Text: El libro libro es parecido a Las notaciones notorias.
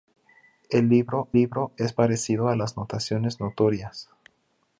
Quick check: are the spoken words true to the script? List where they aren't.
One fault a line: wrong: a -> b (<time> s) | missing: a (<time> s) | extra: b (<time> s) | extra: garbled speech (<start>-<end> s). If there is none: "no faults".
no faults